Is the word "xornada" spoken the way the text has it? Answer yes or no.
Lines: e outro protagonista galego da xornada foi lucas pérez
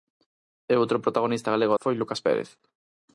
no